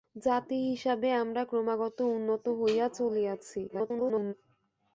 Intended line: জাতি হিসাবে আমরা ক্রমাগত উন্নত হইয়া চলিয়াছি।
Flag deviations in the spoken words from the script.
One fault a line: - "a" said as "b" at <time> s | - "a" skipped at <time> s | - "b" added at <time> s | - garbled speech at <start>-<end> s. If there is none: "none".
- garbled speech at 3.7-4.3 s